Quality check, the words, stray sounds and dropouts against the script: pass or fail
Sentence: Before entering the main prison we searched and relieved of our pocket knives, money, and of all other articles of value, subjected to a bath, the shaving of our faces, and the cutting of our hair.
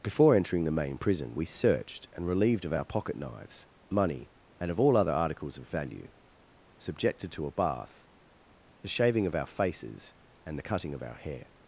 pass